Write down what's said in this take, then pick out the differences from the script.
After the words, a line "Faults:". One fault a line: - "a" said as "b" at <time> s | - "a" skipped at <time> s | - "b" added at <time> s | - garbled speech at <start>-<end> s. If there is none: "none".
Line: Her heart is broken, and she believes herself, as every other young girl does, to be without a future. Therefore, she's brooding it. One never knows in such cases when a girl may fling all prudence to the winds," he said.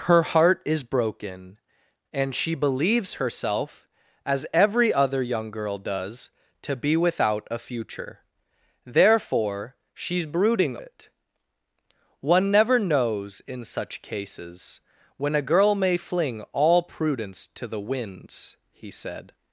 Her heart is broken, and she believes herself, as every other young girl does, to be without a future. Therefore, she's brooding it. One never knows in such cases when a girl may fling all prudence to the winds," he said.
Faults:
none